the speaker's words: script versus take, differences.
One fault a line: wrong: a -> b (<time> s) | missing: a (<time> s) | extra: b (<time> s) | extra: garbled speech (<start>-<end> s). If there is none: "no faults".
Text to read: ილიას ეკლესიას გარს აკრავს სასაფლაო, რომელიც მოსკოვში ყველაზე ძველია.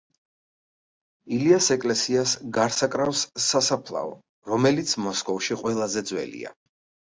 no faults